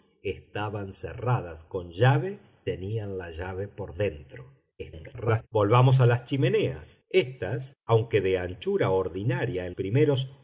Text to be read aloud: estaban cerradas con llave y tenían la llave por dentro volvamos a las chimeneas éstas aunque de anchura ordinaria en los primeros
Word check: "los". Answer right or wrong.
wrong